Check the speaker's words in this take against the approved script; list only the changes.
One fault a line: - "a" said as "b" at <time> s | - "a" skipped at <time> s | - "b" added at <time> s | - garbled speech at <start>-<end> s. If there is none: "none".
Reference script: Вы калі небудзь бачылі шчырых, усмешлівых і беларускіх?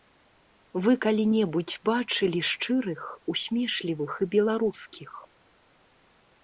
none